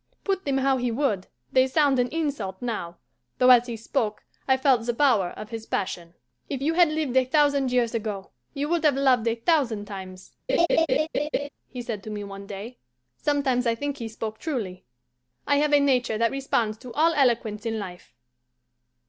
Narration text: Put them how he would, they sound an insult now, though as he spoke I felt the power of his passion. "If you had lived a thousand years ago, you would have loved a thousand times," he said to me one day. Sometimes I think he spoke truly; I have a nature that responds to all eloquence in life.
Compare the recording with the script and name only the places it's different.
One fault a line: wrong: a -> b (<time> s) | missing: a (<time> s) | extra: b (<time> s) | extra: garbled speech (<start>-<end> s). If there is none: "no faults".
no faults